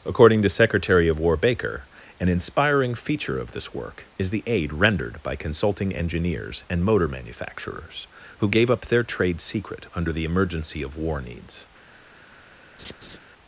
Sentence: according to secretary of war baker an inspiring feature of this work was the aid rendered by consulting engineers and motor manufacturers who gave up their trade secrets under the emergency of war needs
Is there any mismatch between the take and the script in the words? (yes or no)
yes